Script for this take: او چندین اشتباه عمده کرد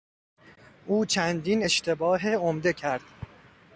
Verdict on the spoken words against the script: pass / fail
pass